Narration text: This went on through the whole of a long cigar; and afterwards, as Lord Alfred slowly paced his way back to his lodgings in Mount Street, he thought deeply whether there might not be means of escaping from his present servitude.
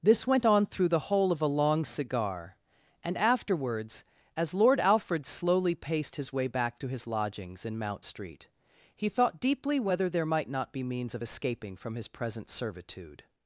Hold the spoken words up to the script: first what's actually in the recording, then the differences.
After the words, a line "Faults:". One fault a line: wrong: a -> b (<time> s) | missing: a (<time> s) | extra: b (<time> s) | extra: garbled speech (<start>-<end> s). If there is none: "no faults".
This went on through the whole of a long cigar; and afterwards, as Lord Alfred slowly paced his way back to his lodgings in Mount Street, he thought deeply whether there might not be means of escaping from his present servitude.
Faults:
no faults